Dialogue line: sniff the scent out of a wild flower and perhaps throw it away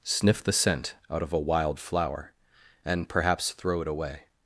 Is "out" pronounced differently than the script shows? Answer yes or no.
no